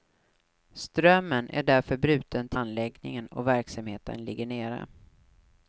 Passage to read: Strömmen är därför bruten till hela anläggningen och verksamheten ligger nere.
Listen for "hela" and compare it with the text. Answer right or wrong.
wrong